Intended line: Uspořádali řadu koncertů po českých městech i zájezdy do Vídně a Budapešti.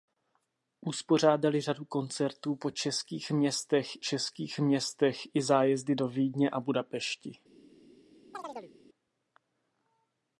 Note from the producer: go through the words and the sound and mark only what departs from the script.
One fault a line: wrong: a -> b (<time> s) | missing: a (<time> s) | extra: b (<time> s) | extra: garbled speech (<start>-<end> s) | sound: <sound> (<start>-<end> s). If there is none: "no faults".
extra: českých městech (4.0 s)
sound: chirp (8.3-8.7 s)